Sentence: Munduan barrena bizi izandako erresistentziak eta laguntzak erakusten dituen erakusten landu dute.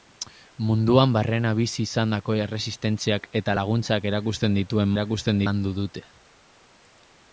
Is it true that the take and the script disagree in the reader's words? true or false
false